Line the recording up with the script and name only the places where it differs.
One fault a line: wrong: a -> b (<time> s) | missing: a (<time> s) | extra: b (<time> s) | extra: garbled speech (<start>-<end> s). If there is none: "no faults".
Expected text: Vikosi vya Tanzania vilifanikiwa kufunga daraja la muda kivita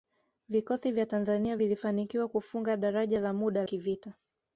no faults